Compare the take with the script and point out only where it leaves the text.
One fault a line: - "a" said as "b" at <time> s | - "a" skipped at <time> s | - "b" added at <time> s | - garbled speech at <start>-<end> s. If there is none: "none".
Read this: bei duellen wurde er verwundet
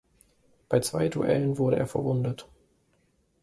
- "zwei" added at 0.8 s